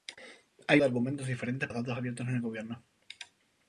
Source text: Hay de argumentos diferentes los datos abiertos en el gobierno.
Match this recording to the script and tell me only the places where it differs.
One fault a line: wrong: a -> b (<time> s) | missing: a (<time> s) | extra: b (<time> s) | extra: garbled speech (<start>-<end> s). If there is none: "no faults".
no faults